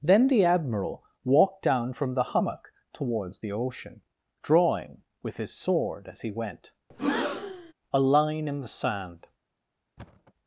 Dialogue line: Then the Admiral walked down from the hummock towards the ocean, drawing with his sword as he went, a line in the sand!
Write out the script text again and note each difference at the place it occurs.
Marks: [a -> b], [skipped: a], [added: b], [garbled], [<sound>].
Then the Admiral walked down from the hummock towards the ocean, drawing with his sword as he went, [breath] a line in the sand! [thud]